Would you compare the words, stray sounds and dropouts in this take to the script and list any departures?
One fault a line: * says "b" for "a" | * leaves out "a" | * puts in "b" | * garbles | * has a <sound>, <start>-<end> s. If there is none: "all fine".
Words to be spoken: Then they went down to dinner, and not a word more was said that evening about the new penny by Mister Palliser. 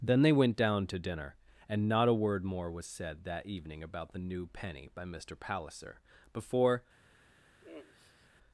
* puts in "Before"
* has a sigh, 7.6-8.3 s